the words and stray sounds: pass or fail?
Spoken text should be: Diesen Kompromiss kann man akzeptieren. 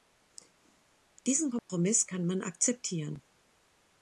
fail